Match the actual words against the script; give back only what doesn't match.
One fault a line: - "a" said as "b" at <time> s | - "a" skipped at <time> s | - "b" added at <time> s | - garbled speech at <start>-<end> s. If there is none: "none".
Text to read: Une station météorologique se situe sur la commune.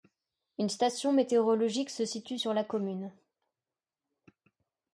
none